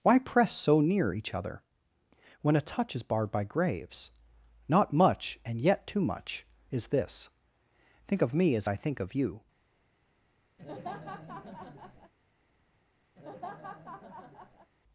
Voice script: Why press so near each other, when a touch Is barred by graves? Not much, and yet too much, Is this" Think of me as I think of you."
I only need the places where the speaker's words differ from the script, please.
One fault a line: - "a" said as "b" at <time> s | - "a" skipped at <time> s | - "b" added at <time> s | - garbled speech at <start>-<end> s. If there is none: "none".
none